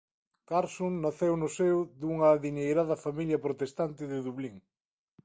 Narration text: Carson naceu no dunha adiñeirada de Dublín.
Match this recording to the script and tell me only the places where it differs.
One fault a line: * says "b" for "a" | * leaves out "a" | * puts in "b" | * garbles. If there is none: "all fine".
* puts in "seo"
* puts in "familia protestante"